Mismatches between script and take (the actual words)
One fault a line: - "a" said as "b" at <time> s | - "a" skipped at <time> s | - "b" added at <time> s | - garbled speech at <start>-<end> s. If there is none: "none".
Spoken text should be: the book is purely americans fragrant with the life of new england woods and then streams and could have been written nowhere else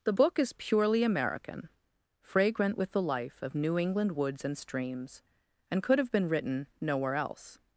- "americans" said as "american" at 1.0 s
- "then" skipped at 4.6 s